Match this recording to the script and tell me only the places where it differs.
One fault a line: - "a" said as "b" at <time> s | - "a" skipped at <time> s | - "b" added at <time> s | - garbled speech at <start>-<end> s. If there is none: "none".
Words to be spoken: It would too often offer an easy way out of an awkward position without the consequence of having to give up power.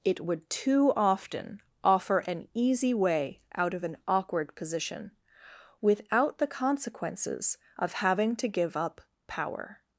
- "consequence" said as "consequences" at 6.5 s